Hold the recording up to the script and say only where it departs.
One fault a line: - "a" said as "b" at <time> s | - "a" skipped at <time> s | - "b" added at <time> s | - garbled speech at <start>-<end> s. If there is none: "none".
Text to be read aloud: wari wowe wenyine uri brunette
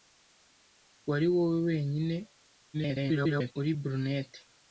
- garbled speech at 2.7-3.5 s